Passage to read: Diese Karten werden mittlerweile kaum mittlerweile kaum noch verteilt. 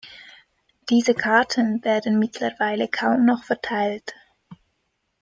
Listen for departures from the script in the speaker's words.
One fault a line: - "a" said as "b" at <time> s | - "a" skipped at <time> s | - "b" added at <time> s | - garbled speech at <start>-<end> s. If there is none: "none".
- "mittlerweile kaum" skipped at 3.2 s